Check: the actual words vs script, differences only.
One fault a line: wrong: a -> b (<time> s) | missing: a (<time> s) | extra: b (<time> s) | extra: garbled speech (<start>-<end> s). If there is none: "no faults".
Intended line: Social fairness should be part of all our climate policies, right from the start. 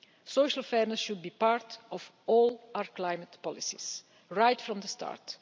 no faults